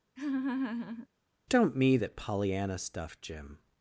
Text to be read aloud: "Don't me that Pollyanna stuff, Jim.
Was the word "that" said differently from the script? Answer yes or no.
no